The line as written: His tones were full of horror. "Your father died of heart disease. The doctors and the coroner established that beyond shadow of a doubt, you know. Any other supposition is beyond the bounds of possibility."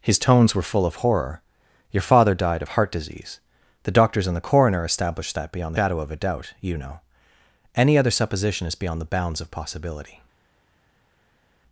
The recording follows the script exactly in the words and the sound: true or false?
true